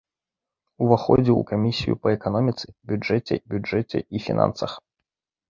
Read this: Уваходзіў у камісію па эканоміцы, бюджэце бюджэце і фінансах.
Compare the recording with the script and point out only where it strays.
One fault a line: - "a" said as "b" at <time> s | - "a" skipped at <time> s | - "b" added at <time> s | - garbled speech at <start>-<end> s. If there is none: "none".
none